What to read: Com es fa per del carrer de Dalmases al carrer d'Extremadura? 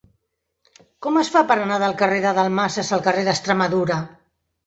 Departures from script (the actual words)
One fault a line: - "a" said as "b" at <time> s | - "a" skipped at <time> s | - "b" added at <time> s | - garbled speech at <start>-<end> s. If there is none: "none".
- "anar" added at 1.6 s